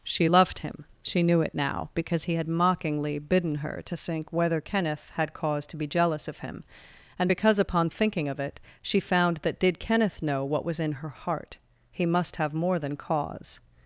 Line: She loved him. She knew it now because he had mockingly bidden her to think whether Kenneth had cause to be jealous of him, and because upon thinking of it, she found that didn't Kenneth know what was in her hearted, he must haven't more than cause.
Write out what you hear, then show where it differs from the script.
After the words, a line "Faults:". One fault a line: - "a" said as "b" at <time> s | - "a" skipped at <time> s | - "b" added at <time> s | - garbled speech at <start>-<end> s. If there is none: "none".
She loved him. She knew it now because he had mockingly bidden her to think whether Kenneth had cause to be jealous of him, and because upon thinking of it, she found that did Kenneth know what was in her heart, he must have more than cause.
Faults:
- "didn't" said as "did" at 9.6 s
- "hearted" said as "heart" at 11.1 s
- "haven't" said as "have" at 12.4 s